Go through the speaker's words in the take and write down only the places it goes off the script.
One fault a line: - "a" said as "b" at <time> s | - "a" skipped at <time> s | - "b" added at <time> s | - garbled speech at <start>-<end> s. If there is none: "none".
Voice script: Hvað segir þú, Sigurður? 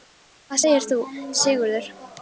none